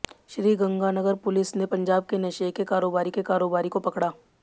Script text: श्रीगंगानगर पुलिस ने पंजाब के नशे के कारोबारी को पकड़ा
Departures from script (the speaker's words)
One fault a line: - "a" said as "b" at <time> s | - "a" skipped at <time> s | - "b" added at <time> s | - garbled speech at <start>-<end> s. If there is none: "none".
- "के कारोबारी" added at 3.1 s